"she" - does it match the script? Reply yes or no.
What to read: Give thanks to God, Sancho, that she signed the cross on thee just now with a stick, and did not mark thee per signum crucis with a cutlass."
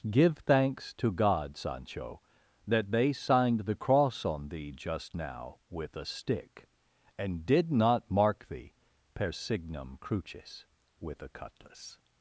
no